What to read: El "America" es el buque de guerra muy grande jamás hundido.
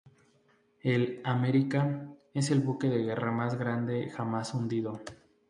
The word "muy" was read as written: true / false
false